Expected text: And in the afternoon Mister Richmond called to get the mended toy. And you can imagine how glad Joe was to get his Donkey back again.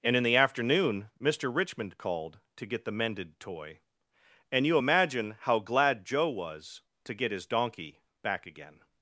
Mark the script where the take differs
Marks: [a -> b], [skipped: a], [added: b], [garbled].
And in the afternoon Mister Richmond called to get the mended toy. And you [skipped: can] imagine how glad Joe was to get his Donkey back again.